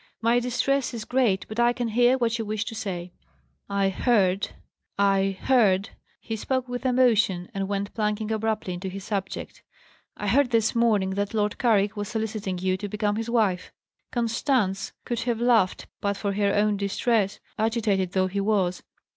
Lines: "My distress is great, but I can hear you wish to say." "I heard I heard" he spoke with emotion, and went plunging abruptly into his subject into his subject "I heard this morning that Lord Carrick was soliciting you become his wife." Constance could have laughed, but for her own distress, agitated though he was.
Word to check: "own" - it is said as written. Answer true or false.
true